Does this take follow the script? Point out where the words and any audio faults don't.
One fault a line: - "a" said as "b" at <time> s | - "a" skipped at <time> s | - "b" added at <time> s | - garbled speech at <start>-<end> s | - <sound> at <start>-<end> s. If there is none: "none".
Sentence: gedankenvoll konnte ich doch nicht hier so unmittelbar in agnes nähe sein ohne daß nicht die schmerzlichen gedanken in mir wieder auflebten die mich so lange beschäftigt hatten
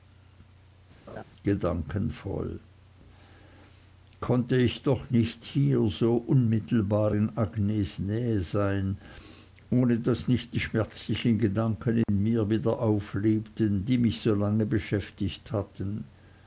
- laugh at 1.1-1.2 s
- dropout at 12.0-12.1 s